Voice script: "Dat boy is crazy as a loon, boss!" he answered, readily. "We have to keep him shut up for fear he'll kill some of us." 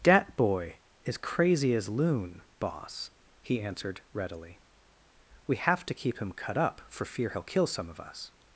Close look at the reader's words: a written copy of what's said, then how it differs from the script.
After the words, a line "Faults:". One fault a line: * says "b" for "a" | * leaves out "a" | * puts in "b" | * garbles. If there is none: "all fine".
"Dat boy is crazy as loon, boss!" he answered, readily. "We have to keep him cut up for fear he'll kill some of us."
Faults:
* leaves out "a"
* says "cut" for "shut"